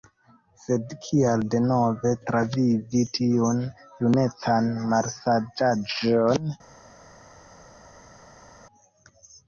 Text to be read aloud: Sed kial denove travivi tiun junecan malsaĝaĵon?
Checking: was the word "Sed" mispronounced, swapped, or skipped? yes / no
no